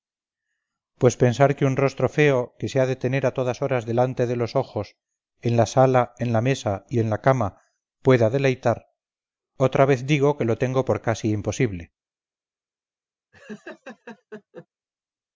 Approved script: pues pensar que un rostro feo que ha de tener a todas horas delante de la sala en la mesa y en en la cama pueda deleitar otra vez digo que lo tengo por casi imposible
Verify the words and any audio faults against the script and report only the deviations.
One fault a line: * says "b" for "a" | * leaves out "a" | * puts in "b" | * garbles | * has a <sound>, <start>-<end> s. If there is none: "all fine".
* puts in "se"
* puts in "los ojos en"
* leaves out "en"
* has a laugh, 13.3-14.7 s